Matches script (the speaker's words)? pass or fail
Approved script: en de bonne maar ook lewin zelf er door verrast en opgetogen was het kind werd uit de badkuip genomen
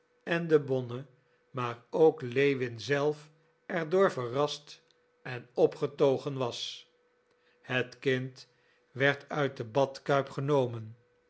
pass